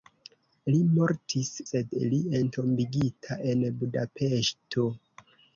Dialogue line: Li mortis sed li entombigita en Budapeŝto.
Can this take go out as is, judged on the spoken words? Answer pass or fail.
pass